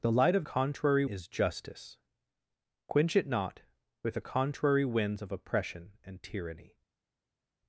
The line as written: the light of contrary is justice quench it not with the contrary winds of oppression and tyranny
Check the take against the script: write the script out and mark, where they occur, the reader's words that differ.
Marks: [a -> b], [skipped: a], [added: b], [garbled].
the light of contrary is justice quench it not with the contrary winds of oppression and tyranny